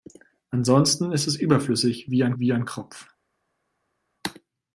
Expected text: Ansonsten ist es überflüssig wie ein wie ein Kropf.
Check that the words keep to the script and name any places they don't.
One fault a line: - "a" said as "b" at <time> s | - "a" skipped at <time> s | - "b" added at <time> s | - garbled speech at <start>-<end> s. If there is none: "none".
none